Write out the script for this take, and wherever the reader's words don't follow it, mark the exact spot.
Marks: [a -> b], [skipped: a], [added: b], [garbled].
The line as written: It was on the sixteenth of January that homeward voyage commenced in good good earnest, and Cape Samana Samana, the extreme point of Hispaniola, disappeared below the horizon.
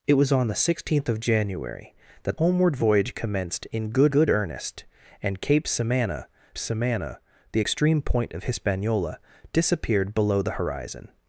It was on the sixteenth of January that homeward voyage commenced in good good earnest, and Cape Samana Samana, the extreme point of Hispaniola, disappeared below the horizon.